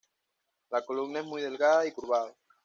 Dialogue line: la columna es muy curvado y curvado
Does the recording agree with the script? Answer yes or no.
no